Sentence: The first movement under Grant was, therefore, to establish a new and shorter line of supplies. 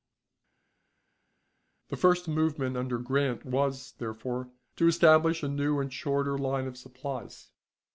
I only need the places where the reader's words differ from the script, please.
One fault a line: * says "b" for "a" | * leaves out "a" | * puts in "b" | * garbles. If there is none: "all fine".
all fine